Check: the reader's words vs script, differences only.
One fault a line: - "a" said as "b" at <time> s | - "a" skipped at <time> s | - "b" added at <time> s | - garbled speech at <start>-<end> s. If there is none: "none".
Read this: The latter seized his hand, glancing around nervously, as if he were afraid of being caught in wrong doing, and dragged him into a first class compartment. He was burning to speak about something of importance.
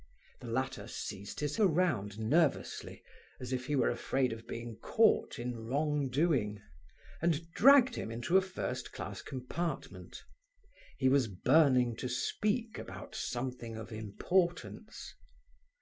- "hand glancing" skipped at 1.6 s